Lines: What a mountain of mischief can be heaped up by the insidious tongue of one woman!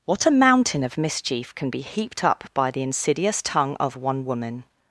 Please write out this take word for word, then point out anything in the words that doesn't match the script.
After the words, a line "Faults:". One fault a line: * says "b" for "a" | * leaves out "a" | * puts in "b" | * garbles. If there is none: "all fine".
What a mountain of mischief can be heaped up by the insidious tongue of one woman!
Faults:
all fine